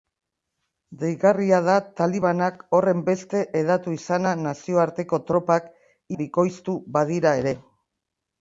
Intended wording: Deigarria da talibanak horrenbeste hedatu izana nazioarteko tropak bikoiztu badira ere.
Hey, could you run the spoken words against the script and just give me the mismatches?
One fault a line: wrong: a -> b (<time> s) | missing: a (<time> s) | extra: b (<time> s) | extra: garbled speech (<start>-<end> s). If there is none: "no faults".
no faults